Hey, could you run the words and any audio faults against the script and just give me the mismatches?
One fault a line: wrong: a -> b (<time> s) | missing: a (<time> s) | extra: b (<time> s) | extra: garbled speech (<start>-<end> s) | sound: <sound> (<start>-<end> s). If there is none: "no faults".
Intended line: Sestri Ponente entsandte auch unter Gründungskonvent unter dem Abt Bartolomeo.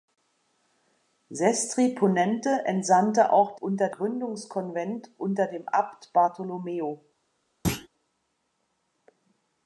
sound: thud (7.6-7.9 s)